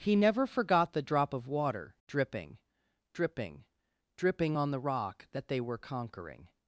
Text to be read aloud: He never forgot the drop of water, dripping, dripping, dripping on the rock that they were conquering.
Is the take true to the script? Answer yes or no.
yes